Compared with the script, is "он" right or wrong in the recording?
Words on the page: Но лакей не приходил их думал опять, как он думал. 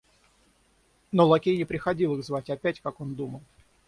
right